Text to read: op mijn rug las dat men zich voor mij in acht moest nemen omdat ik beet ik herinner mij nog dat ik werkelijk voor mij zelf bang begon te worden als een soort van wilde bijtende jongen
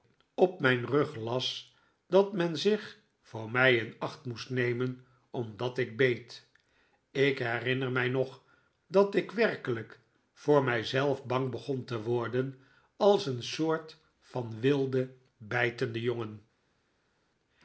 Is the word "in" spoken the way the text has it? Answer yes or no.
yes